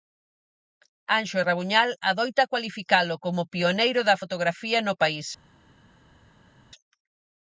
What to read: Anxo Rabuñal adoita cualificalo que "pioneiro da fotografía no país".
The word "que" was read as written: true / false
false